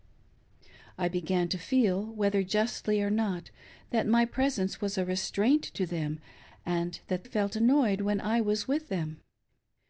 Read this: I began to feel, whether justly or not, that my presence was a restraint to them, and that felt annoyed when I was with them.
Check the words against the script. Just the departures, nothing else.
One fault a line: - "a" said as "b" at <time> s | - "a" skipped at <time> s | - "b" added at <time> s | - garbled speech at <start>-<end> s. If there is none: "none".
none